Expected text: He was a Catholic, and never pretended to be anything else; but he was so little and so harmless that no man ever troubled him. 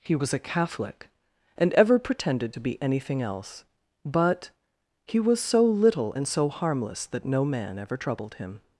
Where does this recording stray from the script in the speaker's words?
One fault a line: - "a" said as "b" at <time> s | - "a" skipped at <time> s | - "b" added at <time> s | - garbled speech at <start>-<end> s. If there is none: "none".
- "never" said as "ever" at 1.7 s